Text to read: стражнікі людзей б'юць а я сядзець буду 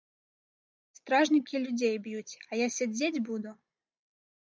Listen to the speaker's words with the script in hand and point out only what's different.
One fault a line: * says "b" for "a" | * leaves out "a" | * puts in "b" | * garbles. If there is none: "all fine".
all fine